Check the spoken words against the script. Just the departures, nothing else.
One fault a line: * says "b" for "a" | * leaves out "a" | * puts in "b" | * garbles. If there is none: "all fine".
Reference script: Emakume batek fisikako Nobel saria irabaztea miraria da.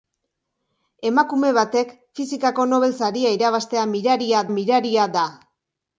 * puts in "miraria"